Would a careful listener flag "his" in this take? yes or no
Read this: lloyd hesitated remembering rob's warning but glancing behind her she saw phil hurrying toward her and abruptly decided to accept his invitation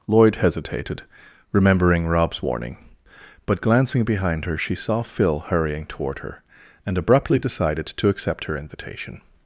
yes